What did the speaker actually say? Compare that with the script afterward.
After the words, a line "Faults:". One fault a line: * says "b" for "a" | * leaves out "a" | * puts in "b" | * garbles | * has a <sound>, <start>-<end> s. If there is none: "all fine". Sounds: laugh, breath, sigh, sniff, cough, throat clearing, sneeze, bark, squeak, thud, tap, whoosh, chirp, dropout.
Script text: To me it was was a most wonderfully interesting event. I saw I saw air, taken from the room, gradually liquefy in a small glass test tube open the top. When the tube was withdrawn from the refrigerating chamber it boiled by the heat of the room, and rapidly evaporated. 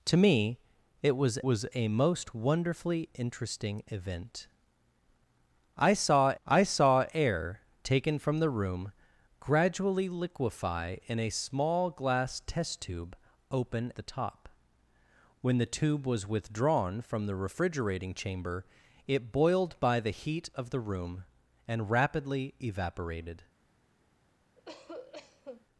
To me it was was a most wonderfully interesting event. I saw I saw air, taken from the room, gradually liquefy in a small glass test tube open the top. When the tube was withdrawn from the refrigerating chamber it boiled by the heat of the room, and rapidly evaporated.
Faults:
* has a cough, 24.6-25.7 s